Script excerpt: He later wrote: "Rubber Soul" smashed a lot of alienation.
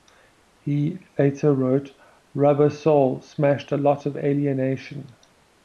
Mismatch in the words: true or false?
false